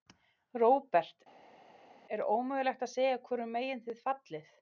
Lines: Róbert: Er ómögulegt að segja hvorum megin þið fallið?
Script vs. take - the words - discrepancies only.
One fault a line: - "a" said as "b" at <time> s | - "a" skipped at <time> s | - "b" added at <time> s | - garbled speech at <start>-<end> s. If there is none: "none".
none